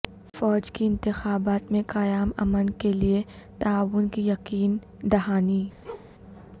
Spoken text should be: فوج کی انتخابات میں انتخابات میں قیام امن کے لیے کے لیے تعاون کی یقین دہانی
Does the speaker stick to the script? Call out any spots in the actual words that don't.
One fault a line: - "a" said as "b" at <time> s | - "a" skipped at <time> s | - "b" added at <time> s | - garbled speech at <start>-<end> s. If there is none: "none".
- "انتخابات میں" skipped at 1.8 s
- "کے لیے" skipped at 3.2 s